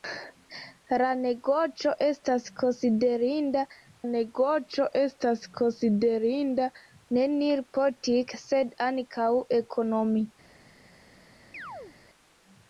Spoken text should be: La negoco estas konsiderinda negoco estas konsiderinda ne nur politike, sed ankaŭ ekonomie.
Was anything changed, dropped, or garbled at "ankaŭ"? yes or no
no